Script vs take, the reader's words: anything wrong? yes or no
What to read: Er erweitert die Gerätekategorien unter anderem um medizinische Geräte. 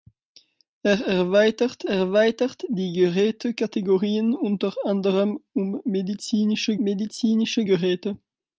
yes